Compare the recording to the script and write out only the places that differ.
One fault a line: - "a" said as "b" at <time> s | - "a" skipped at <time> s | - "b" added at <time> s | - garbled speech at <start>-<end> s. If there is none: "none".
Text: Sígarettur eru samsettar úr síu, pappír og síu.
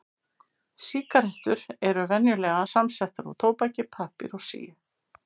- "venjulega" added at 2.1 s
- "síu" said as "tóbaki" at 3.4 s